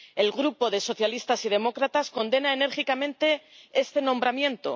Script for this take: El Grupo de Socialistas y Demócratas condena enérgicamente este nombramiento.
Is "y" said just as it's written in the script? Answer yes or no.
yes